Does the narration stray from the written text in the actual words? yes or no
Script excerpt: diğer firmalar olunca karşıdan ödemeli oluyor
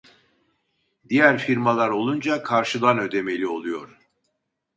no